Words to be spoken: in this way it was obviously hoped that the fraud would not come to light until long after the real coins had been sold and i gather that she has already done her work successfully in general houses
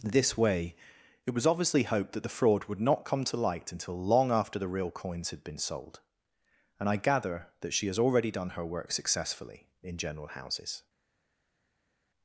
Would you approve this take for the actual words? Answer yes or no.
no